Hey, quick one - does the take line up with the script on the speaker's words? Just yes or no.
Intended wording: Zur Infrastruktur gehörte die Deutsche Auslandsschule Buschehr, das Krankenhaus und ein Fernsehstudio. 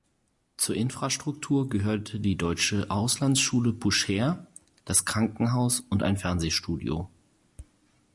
yes